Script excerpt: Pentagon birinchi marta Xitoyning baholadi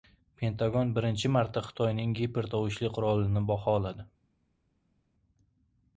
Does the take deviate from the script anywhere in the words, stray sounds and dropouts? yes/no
yes